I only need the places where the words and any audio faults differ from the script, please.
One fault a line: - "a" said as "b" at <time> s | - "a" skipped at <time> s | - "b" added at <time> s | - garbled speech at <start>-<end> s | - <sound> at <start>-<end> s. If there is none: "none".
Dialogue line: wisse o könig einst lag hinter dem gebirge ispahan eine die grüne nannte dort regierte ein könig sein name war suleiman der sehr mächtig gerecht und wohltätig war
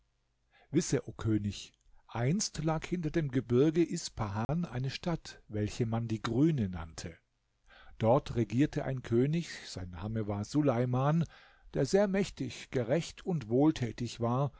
- dropout at 4.4-4.5 s
- "stadt welche man" added at 4.9 s